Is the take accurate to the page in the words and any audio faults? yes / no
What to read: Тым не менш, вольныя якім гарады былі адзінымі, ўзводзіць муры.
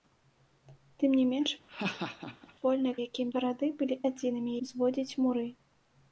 no